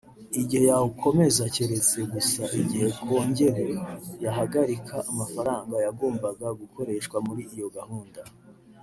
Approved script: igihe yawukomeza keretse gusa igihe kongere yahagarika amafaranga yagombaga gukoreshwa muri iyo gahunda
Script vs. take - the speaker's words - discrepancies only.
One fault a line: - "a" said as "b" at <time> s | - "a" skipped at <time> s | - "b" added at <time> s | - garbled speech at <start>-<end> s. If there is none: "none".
none